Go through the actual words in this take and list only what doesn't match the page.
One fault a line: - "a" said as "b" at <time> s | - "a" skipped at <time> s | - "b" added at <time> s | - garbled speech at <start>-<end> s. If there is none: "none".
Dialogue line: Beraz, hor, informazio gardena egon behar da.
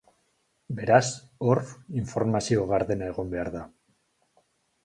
none